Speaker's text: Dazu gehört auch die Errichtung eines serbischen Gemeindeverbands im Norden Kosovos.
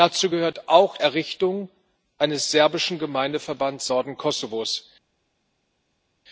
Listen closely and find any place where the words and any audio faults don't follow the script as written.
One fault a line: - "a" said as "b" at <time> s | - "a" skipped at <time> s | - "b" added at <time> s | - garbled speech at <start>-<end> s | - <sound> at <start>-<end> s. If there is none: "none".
- "die" skipped at 1.0 s
- "im" skipped at 3.9 s